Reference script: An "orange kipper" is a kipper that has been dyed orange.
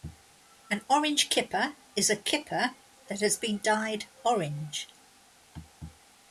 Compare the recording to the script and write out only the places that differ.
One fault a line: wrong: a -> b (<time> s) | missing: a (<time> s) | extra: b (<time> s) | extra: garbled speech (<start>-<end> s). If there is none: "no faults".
no faults